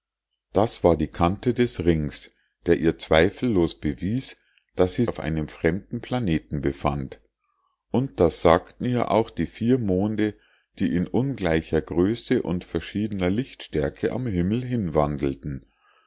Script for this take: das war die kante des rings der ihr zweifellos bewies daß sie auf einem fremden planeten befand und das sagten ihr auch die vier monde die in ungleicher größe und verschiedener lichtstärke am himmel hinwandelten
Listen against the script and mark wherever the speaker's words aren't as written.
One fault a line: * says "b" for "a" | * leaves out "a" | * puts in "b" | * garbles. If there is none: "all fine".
all fine